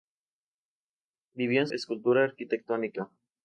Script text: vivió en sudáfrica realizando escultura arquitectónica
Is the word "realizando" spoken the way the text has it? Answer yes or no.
no